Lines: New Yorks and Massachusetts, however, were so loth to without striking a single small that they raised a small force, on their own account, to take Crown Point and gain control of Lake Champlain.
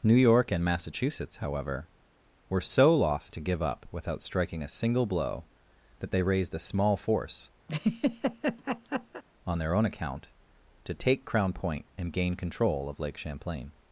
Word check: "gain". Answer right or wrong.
right